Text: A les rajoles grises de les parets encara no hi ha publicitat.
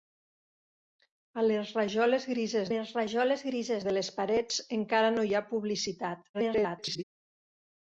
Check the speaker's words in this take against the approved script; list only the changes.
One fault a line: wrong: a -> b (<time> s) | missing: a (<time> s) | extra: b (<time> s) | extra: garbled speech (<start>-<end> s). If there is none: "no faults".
extra: les rajoles grises (2.7 s)
extra: garbled speech (6.3-7.0 s)